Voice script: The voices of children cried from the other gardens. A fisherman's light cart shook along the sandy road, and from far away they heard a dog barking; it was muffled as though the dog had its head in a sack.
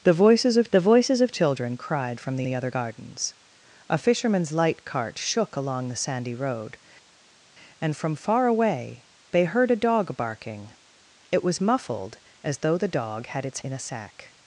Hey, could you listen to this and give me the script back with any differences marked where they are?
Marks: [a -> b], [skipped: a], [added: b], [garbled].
The voices of [added: the voices of] children cried from the [added: the] other gardens. A fisherman's light cart shook along the sandy road, and from far away they heard a dog barking; it was muffled as though the dog had its [skipped: head] in a sack.